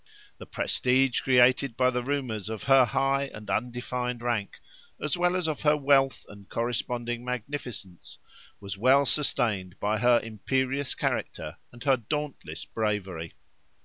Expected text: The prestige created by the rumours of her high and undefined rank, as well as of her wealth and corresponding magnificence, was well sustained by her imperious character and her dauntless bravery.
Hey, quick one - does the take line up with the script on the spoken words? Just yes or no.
yes